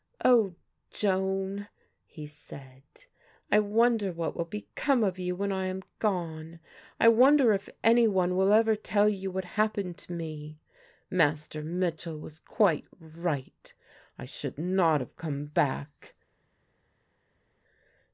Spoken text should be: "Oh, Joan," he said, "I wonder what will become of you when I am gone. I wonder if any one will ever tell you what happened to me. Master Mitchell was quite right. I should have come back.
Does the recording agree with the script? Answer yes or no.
no